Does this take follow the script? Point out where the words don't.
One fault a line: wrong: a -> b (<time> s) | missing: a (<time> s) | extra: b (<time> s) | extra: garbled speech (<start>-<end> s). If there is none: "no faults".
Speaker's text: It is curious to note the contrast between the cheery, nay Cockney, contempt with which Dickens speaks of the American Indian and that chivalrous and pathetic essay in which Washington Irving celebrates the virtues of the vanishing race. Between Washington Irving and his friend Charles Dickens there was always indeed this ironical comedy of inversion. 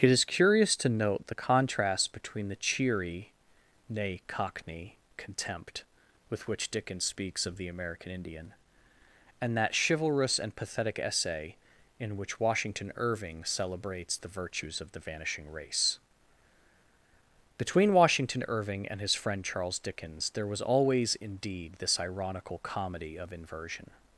no faults